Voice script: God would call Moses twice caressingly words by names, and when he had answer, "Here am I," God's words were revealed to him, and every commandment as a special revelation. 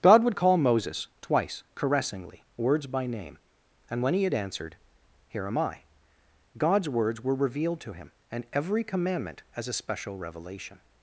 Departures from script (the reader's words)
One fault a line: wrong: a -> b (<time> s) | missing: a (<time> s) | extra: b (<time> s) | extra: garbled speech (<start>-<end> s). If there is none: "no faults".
wrong: names -> name (3.0 s)
wrong: answer -> answered (4.3 s)